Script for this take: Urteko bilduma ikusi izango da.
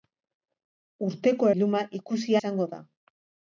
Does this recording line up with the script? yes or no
yes